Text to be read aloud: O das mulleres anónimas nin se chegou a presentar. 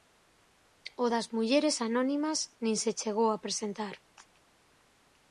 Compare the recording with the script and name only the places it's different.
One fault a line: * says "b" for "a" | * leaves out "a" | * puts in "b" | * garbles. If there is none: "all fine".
all fine